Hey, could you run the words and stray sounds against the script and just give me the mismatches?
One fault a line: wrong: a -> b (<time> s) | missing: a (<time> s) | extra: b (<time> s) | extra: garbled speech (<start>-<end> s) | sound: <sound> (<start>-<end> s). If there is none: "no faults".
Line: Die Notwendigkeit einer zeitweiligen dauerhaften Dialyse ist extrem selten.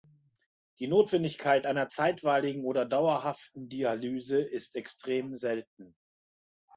extra: oder (2.6 s)